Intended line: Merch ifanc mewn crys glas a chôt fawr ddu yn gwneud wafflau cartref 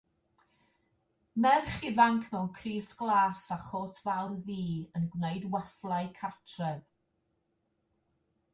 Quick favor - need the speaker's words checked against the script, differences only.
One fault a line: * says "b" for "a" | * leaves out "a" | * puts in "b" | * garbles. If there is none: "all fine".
all fine